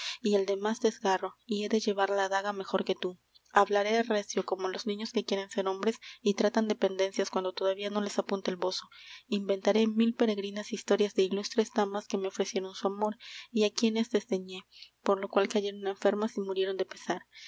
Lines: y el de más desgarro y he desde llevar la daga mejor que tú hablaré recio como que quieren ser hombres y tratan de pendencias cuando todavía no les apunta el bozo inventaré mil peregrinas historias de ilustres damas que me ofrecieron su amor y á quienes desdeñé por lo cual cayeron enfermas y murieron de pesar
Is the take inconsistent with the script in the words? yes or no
yes